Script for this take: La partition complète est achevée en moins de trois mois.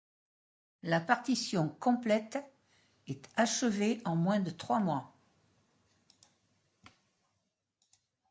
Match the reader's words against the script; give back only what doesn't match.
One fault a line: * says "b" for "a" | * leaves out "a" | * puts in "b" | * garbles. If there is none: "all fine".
all fine